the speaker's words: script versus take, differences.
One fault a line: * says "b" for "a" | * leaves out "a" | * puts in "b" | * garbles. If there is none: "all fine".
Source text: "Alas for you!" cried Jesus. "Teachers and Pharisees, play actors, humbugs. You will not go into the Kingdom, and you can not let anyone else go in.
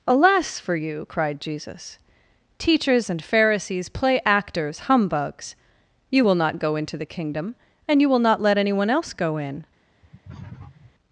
* says "will" for "can"